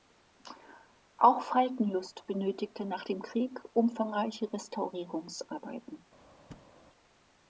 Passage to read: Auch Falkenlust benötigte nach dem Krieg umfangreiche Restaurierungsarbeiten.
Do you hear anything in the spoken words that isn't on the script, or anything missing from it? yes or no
no